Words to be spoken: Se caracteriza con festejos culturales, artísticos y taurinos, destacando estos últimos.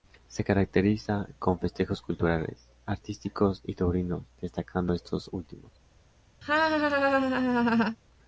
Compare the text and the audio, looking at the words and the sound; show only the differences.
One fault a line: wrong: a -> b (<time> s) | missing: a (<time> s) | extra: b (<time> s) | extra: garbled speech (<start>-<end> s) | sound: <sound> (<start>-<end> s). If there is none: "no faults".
sound: laugh (6.4-8.0 s)